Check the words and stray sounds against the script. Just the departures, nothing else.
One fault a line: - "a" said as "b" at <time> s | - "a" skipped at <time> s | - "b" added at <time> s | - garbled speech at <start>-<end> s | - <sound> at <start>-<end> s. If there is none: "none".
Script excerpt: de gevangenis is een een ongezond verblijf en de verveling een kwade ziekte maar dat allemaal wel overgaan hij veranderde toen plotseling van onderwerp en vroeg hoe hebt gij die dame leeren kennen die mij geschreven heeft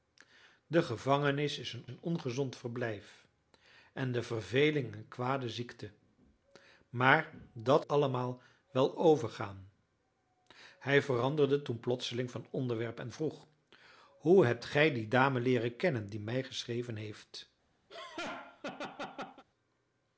- laugh at 17.9-19.4 s